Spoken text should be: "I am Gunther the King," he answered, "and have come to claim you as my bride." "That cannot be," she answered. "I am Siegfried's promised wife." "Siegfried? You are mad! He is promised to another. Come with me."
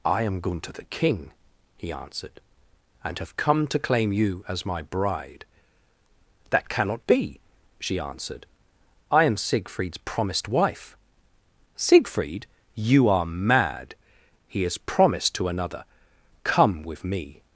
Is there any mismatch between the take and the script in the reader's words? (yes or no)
no